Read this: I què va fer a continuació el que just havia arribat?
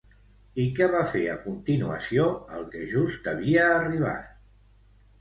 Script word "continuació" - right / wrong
right